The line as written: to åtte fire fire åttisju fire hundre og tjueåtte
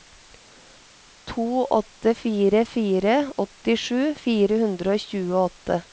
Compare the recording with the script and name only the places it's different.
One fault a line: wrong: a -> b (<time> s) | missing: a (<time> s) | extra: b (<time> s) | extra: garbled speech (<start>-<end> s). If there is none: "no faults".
no faults